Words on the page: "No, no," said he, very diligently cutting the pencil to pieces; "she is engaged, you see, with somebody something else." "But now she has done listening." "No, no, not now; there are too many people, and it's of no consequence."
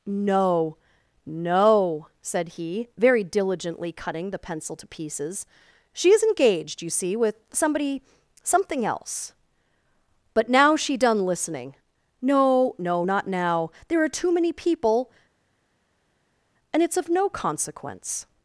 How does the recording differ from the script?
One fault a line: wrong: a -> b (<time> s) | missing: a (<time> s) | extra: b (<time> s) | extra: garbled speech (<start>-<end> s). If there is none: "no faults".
missing: has (11.0 s)